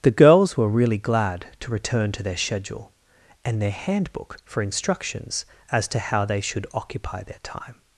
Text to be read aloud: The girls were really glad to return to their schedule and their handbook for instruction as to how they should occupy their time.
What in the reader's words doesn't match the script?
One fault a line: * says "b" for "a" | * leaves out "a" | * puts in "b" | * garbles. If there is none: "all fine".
* says "instructions" for "instruction"